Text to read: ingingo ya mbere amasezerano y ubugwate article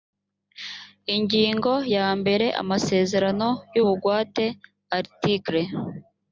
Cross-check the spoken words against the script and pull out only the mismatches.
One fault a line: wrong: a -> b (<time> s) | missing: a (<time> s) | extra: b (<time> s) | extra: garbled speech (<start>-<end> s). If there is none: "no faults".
no faults